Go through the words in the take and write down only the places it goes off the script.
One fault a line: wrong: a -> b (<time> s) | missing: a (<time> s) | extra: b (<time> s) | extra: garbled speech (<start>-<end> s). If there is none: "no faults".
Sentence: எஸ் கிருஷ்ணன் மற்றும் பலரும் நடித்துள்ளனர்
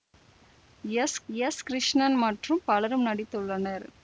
extra: எஸ் (1.3 s)